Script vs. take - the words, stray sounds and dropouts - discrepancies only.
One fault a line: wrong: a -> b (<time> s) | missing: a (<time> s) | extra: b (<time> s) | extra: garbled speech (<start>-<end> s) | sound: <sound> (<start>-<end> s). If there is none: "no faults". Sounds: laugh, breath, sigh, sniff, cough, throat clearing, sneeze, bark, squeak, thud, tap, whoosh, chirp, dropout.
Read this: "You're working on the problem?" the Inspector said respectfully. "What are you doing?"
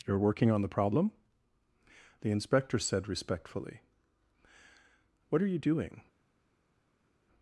no faults